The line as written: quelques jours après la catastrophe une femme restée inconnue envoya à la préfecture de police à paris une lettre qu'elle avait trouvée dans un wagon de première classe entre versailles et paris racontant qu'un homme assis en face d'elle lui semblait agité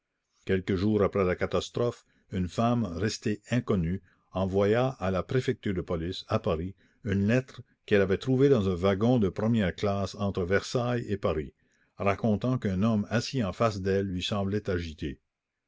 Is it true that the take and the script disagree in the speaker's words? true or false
false